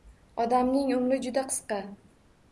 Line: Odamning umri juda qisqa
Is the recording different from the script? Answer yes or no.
no